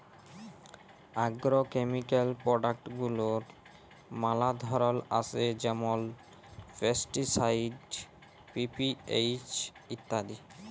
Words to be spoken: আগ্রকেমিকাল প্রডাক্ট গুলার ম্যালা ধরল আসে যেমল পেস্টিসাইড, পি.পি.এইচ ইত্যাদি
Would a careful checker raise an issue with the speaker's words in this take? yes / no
no